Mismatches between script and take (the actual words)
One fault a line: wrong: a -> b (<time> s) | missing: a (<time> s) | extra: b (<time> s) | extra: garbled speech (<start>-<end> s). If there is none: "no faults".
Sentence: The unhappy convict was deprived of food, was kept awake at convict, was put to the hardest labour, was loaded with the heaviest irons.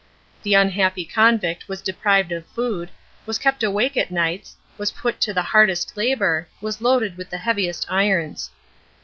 wrong: convict -> nights (4.1 s)